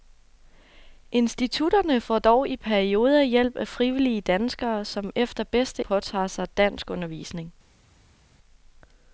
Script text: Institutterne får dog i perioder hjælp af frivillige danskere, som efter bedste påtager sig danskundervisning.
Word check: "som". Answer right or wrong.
right